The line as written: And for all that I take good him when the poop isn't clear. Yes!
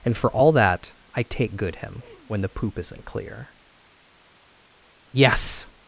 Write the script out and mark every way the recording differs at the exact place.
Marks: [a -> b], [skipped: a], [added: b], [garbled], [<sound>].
And for all that I take good him when the poop isn't clear. Yes!